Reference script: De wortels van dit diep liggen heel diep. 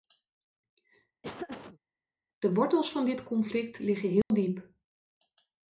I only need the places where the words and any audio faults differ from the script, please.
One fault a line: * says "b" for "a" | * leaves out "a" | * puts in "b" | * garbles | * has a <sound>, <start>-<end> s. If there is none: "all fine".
* has a laugh, 1.2-1.8 s
* says "conflict" for "diep"
* has a dropout, 4.2-4.3 s